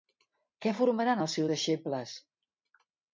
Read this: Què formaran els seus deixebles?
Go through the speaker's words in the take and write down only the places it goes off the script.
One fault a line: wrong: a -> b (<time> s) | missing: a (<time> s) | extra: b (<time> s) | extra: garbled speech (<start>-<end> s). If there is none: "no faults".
no faults